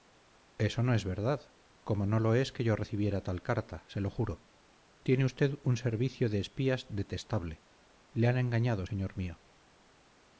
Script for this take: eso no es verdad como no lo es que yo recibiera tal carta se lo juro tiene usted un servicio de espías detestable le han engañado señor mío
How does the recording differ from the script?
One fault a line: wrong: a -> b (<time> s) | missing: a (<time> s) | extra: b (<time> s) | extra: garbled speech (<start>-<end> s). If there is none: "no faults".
no faults